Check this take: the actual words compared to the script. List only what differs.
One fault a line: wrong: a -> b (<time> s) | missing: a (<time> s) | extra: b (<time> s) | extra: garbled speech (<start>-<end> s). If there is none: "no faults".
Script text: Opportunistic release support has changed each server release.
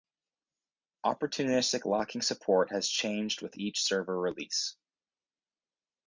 wrong: release -> locking (1.8 s)
extra: with (3.4 s)